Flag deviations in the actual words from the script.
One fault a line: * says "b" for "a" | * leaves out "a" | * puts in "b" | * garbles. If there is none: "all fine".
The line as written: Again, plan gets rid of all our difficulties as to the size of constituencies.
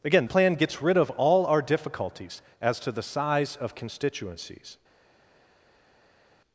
all fine